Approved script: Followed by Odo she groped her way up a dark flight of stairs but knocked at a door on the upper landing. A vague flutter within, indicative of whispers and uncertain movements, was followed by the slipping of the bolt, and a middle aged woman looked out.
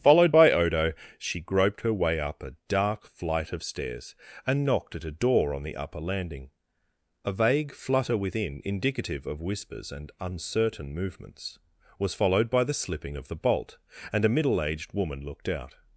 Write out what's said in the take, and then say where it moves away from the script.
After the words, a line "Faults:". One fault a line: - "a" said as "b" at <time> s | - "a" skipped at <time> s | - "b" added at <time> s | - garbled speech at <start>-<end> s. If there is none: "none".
Followed by Odo she groped her way up a dark flight of stairs and knocked at a door on the upper landing. A vague flutter within, indicative of whispers and uncertain movements, was followed by the slipping of the bolt, and a middle aged woman looked out.
Faults:
- "but" said as "and" at 4.5 s